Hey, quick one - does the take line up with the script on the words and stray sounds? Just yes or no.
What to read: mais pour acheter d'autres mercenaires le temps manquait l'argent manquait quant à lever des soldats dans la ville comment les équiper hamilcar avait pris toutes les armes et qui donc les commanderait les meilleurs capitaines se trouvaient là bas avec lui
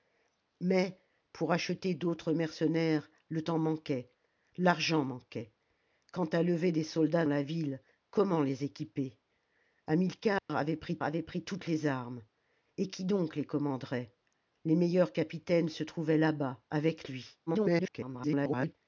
no